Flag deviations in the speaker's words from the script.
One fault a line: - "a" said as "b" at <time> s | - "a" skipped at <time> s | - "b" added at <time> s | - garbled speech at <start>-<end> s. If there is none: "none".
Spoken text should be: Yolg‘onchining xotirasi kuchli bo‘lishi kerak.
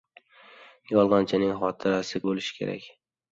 - "kuchli" skipped at 2.2 s